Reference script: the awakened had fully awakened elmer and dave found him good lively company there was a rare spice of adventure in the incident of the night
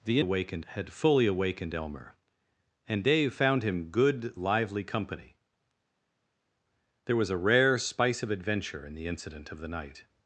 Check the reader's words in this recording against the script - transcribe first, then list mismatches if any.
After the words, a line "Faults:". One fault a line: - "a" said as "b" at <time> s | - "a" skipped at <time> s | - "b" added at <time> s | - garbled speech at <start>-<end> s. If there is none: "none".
the awakened had fully awakened elmer and dave found him good lively company there was a rare spice of adventure in the incident of the night
Faults:
none